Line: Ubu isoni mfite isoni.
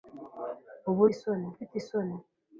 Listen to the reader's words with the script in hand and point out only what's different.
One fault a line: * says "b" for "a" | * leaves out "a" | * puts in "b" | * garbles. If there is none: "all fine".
all fine